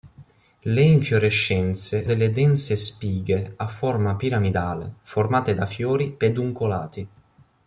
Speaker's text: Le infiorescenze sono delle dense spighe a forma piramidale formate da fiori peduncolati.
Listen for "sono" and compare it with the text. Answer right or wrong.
wrong